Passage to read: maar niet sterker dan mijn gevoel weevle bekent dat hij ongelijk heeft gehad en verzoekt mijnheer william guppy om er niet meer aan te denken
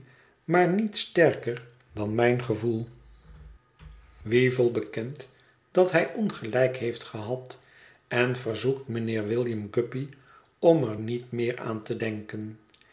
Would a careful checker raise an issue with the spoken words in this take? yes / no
no